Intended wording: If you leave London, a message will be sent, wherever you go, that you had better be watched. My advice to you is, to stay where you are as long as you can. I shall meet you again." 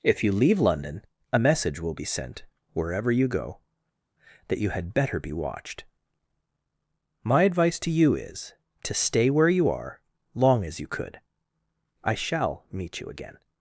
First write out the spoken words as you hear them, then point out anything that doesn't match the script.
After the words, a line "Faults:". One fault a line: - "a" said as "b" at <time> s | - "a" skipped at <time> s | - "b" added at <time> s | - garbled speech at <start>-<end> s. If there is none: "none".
If you leave London, a message will be sent, wherever you go, that you had better be watched. My advice to you is, to stay where you are long as you could. I shall meet you again."
Faults:
- "as" skipped at 10.0 s
- "can" said as "could" at 10.9 s